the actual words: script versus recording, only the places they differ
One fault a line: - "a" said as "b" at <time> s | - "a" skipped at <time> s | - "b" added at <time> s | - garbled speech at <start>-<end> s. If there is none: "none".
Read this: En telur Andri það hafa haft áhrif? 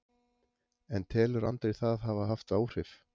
none